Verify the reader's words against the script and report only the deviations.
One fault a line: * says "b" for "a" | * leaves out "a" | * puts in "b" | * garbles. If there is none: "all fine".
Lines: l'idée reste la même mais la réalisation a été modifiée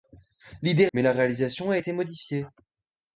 * leaves out "reste la même"